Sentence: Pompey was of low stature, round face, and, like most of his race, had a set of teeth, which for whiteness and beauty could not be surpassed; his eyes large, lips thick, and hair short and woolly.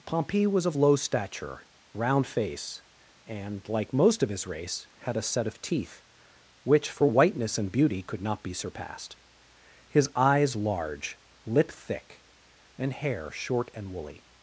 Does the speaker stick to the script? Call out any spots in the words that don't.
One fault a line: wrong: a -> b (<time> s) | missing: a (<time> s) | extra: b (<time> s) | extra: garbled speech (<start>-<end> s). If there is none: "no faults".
wrong: lips -> lip (11.4 s)